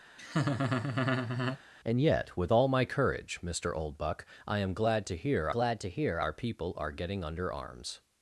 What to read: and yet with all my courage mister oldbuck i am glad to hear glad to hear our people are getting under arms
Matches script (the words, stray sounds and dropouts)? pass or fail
fail